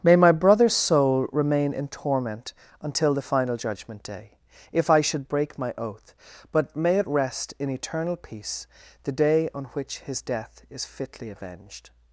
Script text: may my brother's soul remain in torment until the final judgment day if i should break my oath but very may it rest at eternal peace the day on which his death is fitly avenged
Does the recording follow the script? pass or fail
fail